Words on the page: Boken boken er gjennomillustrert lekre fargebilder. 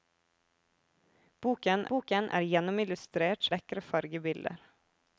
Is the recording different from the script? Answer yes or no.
no